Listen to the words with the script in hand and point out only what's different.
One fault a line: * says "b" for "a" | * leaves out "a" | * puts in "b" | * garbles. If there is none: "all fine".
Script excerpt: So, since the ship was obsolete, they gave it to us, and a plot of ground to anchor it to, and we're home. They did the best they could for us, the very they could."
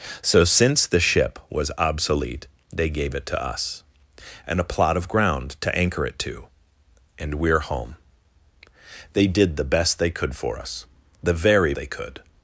all fine